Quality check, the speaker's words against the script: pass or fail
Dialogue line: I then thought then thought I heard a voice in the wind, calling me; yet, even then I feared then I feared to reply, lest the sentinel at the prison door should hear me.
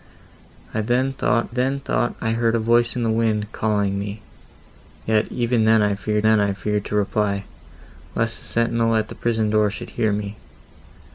pass